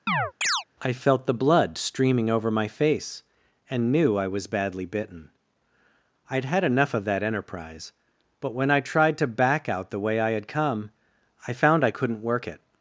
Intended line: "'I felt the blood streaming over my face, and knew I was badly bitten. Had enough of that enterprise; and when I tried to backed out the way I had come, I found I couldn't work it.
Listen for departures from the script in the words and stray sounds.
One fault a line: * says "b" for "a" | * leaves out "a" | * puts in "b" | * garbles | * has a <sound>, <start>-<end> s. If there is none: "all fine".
* has a chirp, 0.1-0.6 s
* puts in "I'd"
* says "but" for "and"
* says "back" for "backed"